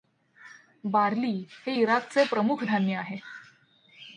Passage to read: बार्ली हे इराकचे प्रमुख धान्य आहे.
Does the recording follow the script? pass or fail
pass